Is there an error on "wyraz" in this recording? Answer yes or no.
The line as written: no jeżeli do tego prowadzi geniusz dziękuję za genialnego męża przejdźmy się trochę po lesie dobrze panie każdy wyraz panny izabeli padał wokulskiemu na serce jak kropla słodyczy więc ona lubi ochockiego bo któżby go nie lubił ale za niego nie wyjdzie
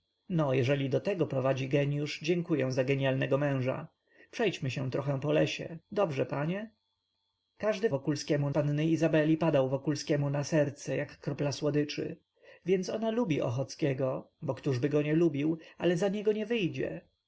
yes